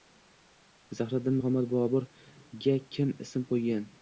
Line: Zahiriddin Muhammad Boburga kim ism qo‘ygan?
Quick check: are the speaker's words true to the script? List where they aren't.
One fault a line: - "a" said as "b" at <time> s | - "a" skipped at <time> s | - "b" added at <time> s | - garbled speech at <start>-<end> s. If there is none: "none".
none